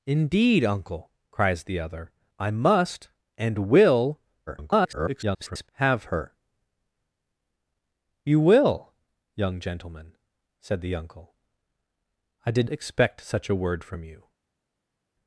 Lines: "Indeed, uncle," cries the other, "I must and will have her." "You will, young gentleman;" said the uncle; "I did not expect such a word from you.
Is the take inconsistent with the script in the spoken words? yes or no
yes